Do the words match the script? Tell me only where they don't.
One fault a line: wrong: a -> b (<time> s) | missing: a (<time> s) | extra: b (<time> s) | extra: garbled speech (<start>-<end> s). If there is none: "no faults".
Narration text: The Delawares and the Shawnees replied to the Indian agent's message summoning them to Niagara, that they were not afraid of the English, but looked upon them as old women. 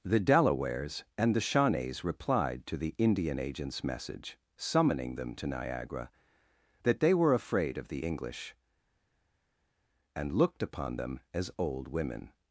missing: not (7.3 s)
wrong: but -> and (10.2 s)